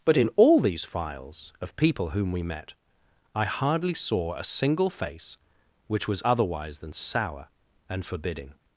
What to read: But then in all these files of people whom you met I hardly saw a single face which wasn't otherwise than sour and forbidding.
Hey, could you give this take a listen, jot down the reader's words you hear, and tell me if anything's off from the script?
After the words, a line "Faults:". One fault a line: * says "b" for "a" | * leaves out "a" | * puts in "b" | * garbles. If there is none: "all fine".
But in all these files of people whom we met I hardly saw a single face which was otherwise than sour and forbidding.
Faults:
* leaves out "then"
* says "we" for "you"
* says "was" for "wasn't"